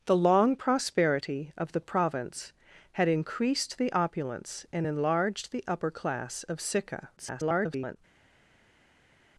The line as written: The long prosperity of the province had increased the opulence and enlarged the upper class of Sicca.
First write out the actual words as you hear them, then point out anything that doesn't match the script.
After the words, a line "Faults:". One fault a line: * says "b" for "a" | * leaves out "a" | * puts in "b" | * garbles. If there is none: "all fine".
The long prosperity of the province had increased the opulence and enlarged the upper class of Sicca. [garbled]
Faults:
* garbles